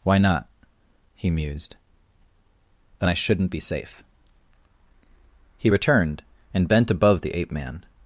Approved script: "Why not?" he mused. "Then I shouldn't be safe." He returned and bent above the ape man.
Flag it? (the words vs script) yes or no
no